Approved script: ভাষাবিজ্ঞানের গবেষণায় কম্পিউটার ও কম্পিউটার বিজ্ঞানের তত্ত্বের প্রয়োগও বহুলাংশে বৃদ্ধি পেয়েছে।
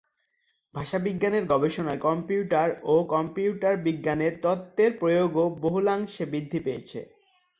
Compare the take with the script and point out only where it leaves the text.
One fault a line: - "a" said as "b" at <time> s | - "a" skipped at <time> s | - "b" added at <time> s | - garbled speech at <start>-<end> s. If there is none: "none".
none